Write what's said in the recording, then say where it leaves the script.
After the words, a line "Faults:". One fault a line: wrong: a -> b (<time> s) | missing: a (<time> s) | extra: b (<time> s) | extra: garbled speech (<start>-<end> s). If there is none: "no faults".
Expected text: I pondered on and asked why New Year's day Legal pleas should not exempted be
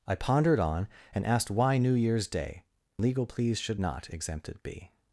I pondered on and asked why New Year's day Legal pleas should not exempted be
Faults:
no faults